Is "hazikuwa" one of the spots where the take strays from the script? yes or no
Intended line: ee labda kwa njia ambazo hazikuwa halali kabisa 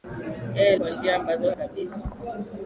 yes